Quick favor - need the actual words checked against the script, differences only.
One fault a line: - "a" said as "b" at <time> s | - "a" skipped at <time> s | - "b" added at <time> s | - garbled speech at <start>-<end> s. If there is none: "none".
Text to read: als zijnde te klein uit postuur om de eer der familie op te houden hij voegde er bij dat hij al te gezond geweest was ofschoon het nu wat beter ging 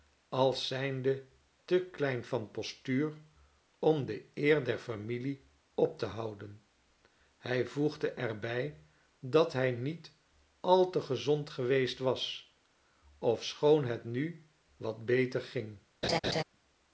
- "uit" said as "van" at 2.2 s
- "niet" added at 9.7 s